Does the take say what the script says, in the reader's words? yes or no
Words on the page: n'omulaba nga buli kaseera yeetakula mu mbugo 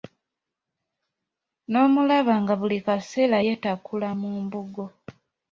yes